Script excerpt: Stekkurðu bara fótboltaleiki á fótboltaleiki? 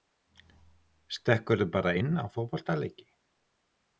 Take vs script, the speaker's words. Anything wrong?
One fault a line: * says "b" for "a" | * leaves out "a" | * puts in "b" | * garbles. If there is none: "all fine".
* says "inn" for "fótboltaleiki"